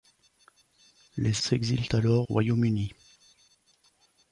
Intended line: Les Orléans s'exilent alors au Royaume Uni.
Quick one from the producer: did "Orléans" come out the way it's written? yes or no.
no